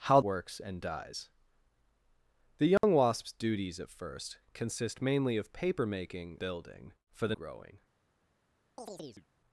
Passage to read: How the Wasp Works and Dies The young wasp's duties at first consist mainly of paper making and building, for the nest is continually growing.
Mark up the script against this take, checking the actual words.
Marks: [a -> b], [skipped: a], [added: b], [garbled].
How [skipped: the Wasp] Works and Dies The young wasp's duties at first consist mainly of paper making [skipped: and] building, for the [skipped: nest is continually] growing.